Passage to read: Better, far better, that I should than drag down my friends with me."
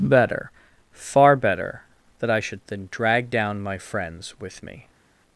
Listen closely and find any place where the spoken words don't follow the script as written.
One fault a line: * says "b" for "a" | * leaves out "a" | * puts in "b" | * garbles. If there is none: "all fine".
all fine